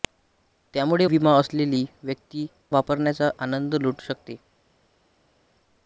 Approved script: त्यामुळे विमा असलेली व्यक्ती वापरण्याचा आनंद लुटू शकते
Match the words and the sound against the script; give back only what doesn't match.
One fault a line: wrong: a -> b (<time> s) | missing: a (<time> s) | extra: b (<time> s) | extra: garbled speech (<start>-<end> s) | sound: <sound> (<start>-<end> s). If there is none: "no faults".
no faults